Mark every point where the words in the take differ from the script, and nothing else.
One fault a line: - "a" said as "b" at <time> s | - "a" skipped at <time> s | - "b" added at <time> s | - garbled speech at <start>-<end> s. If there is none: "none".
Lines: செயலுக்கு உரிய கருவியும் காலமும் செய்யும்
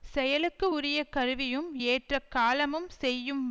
- "ஏற்ற" added at 1.9 s